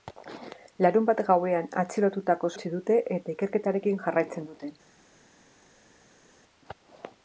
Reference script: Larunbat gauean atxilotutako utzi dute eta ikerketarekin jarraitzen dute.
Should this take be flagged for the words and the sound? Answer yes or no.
no